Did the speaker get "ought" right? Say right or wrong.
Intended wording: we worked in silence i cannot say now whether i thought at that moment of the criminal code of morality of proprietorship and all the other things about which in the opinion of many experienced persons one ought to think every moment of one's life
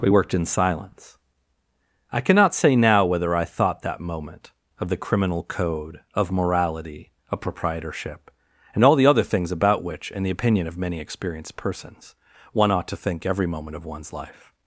right